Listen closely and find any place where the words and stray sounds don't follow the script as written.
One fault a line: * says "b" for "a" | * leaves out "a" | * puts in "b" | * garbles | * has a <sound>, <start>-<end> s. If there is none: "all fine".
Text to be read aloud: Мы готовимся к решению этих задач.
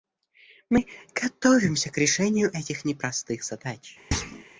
* puts in "непростых"
* has a thud, 4.1-4.4 s